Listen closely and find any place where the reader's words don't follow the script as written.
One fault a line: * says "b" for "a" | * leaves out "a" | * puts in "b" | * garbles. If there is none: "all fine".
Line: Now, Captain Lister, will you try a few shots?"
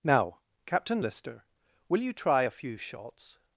all fine